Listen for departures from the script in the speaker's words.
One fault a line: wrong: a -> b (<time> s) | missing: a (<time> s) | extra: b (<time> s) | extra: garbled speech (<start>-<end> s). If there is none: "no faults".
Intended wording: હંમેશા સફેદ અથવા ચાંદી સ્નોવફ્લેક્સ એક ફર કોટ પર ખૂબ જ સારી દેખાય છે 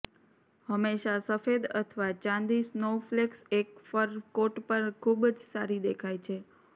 no faults